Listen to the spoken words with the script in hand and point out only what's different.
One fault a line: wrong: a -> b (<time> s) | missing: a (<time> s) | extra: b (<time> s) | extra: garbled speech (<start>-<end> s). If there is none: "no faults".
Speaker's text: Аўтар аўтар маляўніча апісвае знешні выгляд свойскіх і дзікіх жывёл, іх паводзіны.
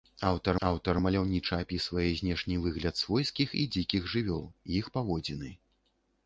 no faults